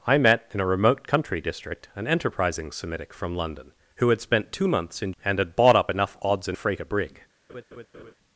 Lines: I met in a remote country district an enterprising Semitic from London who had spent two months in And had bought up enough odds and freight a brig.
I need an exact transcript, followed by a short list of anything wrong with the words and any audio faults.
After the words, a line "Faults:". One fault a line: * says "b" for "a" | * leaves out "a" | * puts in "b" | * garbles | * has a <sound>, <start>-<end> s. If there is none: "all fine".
I met in a remote country district an enterprising Semitic from London who had spent two months in And had bought up enough odds and freight a brig.
Faults:
* has a laugh, 7.5-8.1 s